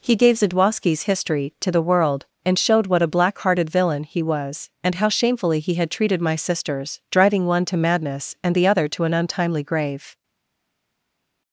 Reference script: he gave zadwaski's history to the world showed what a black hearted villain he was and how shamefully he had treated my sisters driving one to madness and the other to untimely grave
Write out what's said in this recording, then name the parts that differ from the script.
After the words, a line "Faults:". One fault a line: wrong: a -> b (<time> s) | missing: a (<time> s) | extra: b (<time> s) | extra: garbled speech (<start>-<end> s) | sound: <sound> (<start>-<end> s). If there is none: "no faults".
he gave zadwaski's history to the world and showed what a black hearted villain he was and how shamefully he had treated my sisters driving one to madness and the other to an untimely grave
Faults:
extra: and (2.4 s)
extra: an (9.0 s)